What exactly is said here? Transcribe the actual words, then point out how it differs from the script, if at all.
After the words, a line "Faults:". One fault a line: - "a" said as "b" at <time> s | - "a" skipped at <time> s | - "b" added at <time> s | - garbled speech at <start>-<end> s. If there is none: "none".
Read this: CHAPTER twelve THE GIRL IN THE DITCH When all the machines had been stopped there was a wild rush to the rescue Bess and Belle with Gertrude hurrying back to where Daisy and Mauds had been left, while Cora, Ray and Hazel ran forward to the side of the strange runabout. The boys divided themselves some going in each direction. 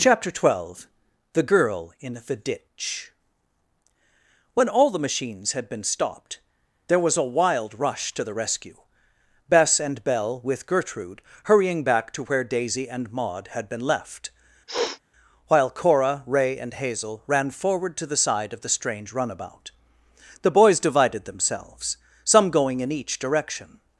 CHAPTER twelve THE GIRL IN THE DITCH When all the machines had been stopped there was a wild rush to the rescue Bess and Belle with Gertrude hurrying back to where Daisy and Maud had been left, while Cora, Ray and Hazel ran forward to the side of the strange runabout. The boys divided themselves some going in each direction.
Faults:
- "Mauds" said as "Maud" at 13.1 s